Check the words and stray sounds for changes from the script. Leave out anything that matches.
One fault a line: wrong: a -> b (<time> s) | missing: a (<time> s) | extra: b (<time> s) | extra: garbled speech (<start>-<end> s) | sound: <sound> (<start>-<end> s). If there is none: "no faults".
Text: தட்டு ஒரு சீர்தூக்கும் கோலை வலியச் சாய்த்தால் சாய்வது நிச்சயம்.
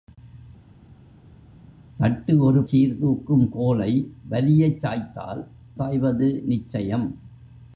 no faults